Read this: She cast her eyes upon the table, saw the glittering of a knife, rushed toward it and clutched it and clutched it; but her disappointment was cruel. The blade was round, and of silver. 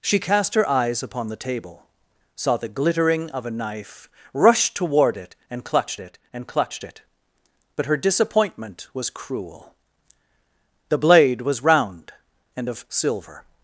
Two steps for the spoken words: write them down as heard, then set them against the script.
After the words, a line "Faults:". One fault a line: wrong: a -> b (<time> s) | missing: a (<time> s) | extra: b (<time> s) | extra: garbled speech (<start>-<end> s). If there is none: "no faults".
She cast her eyes upon the table, saw the glittering of a knife, rushed toward it and clutched it and clutched it; but her disappointment was cruel. The blade was round, and of silver.
Faults:
no faults